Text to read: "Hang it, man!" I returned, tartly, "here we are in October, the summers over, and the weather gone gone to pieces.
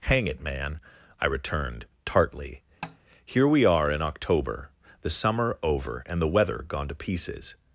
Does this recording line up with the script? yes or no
no